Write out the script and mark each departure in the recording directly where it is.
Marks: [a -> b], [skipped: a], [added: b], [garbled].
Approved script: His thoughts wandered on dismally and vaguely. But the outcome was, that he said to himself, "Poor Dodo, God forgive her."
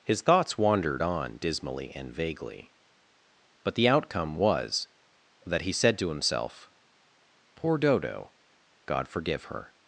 His thoughts wandered on dismally and vaguely. But the outcome was, that he said to himself, "Poor Dodo, God forgive her."